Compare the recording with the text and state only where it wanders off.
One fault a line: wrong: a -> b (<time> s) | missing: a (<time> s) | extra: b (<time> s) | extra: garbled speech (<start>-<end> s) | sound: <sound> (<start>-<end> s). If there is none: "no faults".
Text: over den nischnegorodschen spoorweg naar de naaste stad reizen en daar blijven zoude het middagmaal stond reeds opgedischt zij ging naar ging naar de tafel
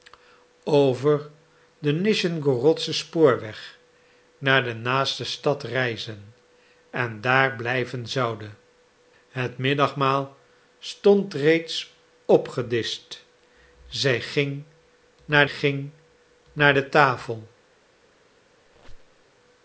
sound: squeak (18.6-19.2 s)